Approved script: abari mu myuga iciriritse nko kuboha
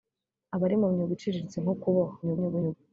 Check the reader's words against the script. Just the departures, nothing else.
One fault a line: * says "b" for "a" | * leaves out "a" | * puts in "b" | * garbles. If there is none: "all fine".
* garbles